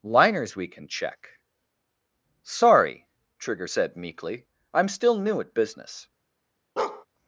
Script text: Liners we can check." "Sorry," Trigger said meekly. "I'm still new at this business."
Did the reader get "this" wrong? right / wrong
wrong